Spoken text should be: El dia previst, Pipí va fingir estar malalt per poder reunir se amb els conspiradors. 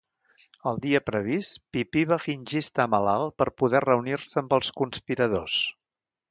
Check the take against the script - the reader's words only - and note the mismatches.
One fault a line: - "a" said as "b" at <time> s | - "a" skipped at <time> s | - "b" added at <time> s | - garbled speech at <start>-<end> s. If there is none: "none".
none